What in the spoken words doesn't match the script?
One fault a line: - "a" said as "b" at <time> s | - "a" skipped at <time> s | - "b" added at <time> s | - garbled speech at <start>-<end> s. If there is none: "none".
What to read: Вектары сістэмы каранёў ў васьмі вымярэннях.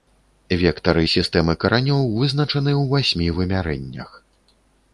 - "вызначаны" added at 2.2 s